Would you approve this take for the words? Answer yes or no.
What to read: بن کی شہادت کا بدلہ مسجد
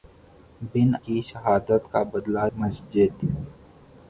yes